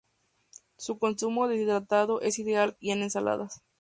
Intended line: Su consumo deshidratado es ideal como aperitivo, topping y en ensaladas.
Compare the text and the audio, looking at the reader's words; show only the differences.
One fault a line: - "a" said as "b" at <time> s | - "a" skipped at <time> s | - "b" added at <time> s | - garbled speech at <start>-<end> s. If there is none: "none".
- "como aperitivo topping" skipped at 2.7 s